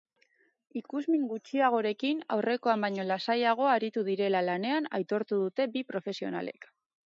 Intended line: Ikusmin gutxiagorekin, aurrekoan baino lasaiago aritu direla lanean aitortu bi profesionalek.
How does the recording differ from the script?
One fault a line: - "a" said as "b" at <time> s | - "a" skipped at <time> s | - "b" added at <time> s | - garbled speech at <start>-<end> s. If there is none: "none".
- "dute" added at 5.5 s